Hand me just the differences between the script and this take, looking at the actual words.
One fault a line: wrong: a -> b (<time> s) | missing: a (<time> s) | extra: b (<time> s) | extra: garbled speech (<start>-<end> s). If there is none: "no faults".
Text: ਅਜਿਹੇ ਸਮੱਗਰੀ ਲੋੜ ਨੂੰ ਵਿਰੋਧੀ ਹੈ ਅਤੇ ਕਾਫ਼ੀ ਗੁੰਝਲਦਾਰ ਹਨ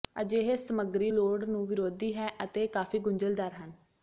no faults